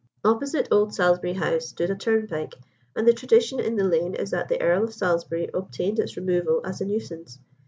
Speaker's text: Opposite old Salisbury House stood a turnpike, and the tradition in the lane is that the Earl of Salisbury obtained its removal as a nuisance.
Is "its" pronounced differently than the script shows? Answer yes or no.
no